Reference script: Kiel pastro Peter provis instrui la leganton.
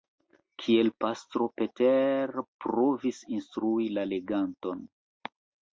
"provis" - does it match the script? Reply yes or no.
yes